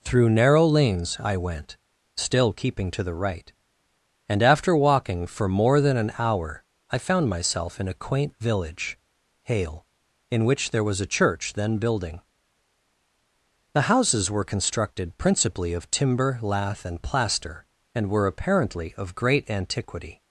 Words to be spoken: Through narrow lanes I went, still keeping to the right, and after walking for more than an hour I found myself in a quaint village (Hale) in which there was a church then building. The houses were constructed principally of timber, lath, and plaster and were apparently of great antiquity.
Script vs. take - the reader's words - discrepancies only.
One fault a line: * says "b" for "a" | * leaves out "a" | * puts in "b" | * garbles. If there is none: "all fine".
all fine